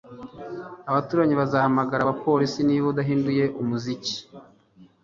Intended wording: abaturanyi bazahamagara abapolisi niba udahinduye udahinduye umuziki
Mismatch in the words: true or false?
true